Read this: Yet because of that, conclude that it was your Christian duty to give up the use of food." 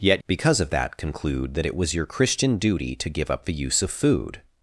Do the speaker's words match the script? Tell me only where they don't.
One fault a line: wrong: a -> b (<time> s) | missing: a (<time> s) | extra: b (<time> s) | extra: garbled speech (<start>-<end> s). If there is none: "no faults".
no faults